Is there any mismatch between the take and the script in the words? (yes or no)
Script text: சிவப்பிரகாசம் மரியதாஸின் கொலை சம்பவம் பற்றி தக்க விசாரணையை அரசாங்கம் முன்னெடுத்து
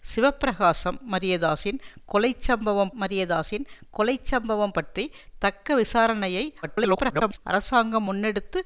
yes